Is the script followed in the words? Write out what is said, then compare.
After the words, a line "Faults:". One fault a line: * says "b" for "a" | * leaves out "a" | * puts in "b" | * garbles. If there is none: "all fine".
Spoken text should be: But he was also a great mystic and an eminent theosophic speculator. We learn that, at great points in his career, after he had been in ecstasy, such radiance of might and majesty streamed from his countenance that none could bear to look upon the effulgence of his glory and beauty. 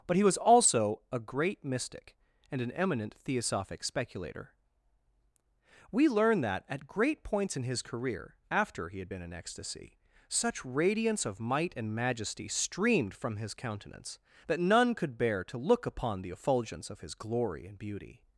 But he was also a great mystic and an eminent theosophic speculator. We learn that, at great points in his career, after he had been in ecstasy, such radiance of might and majesty streamed from his countenance that none could bear to look upon the effulgence of his glory and beauty.
Faults:
all fine